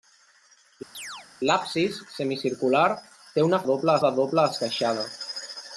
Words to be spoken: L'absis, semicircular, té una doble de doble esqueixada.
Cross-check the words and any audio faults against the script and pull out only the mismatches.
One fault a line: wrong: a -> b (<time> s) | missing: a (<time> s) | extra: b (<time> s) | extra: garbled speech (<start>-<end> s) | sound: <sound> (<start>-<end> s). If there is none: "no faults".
sound: chirp (0.9-1.3 s)